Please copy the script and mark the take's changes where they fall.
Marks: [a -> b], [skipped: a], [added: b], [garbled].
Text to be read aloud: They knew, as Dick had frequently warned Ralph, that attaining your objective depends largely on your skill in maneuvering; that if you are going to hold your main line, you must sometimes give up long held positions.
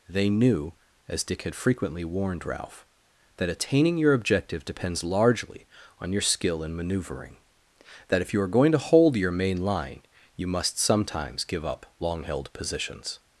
They knew, as Dick had frequently warned Ralph, that attaining your objective depends largely on your skill in maneuvering; that if you are going to hold your main line, you must sometimes give up long held positions.